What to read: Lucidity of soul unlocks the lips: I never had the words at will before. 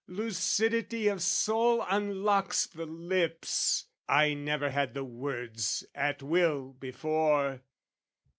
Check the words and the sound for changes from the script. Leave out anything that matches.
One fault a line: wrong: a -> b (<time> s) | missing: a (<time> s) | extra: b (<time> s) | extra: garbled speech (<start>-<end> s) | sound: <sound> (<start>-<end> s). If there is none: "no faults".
no faults